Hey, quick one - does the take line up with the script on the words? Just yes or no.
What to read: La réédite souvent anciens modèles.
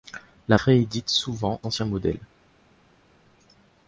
yes